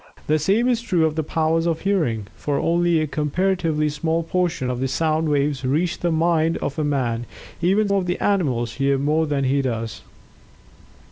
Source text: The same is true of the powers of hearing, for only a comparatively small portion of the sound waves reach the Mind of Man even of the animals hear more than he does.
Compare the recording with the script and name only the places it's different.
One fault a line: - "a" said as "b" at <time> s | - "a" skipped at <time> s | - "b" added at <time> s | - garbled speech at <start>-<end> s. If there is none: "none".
none